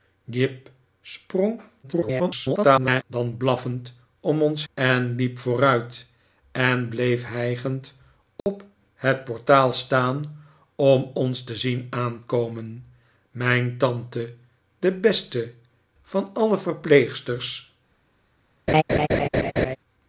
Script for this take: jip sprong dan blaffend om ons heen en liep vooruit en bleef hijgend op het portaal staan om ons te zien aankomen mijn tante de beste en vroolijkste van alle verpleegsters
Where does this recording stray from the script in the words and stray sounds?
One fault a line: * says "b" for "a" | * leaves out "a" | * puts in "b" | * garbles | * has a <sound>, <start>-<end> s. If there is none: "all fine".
* garbles
* leaves out "heen"
* has a dropout, 8.4-8.5 s
* leaves out "en vroolijkste"
* has a laugh, 18.7-19.8 s